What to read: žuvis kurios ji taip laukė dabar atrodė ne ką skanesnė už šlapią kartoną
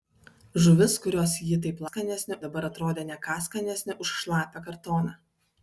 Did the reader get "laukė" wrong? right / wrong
wrong